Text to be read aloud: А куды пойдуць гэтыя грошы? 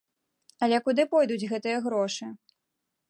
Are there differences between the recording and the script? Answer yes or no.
yes